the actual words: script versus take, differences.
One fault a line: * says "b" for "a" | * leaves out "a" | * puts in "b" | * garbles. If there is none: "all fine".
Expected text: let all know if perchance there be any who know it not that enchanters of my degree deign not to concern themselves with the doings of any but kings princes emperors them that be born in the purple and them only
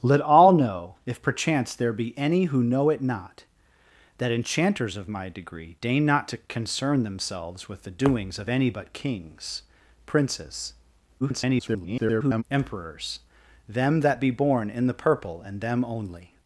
* garbles